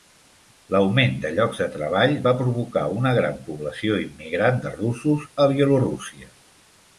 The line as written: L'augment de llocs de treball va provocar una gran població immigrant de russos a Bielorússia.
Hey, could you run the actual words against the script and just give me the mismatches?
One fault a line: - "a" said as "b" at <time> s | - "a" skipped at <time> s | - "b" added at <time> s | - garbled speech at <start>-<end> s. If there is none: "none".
none